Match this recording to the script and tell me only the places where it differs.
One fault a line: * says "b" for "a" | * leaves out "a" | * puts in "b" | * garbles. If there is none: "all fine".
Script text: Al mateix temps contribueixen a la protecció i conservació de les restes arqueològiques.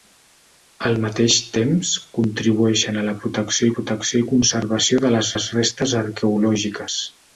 * puts in "protecció"
* puts in "les"